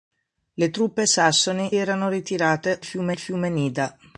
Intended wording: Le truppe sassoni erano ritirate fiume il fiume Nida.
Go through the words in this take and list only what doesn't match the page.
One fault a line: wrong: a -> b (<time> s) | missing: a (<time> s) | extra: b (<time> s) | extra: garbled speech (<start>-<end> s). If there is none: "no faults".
no faults